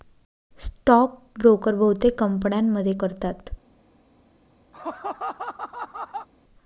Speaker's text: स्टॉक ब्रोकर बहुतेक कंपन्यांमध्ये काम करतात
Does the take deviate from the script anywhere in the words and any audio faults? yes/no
yes